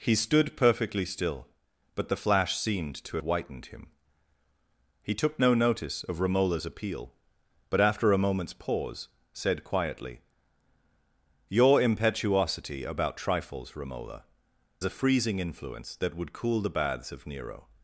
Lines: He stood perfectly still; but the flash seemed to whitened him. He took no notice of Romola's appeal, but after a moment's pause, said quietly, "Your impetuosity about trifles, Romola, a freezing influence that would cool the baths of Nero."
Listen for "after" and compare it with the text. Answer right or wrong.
right